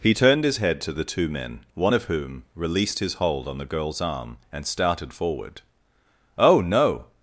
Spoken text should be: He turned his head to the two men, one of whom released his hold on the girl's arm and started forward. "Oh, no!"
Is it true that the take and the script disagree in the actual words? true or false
false